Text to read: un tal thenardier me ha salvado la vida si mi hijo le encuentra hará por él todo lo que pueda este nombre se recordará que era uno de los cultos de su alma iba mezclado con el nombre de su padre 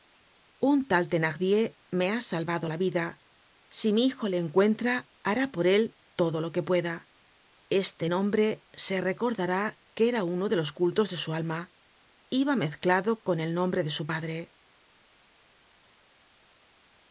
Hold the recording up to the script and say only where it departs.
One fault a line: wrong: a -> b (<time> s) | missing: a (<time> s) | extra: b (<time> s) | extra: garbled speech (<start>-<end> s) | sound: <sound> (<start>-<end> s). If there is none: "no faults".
no faults